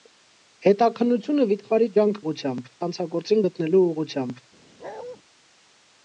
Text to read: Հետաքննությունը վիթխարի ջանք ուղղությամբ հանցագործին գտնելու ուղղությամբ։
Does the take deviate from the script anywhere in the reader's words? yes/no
no